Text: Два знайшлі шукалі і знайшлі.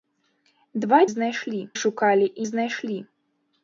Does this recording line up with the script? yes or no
yes